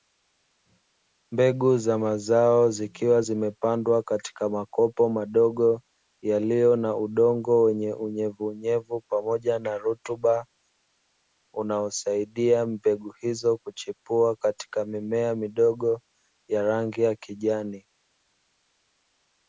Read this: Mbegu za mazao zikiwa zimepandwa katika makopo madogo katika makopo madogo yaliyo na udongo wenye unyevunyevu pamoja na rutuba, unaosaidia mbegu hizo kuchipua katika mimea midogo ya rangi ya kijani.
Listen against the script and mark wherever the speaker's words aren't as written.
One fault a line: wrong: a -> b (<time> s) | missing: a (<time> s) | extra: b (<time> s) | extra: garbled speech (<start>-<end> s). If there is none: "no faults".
missing: katika makopo madogo (5.8 s)